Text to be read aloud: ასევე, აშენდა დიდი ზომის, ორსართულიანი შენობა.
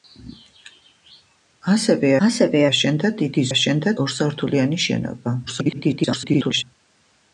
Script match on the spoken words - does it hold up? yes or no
no